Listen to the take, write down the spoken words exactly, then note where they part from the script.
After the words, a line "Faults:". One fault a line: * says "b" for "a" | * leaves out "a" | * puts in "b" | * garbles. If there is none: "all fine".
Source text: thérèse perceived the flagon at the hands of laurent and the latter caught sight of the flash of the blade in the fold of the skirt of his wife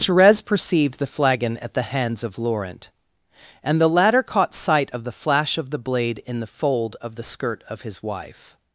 thérèse perceived the flagon at the hands of laurent and the latter caught sight of the flash of the blade in the fold of the skirt of his wife
Faults:
all fine